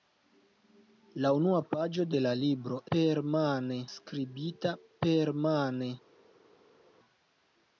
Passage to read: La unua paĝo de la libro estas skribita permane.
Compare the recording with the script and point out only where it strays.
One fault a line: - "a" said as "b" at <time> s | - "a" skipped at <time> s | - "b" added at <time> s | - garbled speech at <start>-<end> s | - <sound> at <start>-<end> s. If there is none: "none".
- "estas" said as "permane" at 3.0 s